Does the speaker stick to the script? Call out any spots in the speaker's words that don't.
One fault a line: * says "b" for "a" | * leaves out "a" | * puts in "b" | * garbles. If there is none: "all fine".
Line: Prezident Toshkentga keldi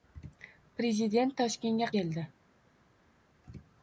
all fine